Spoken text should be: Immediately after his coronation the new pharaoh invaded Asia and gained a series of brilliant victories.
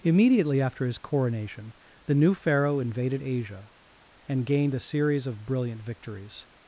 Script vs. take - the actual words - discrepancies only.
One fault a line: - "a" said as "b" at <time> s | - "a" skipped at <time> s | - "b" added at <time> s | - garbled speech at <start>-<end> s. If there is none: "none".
none